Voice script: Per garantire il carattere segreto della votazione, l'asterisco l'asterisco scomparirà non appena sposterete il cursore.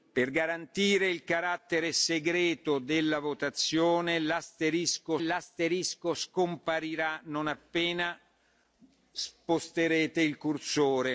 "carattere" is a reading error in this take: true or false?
false